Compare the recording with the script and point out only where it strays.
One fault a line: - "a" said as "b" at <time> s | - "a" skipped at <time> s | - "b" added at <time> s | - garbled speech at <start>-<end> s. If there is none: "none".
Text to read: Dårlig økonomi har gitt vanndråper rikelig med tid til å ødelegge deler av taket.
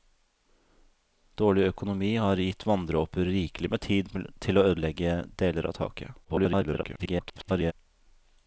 - garbled speech at 6.2-7.7 s